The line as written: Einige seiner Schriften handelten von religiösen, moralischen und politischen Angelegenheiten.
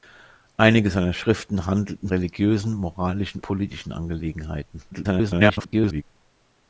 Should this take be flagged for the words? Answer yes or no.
yes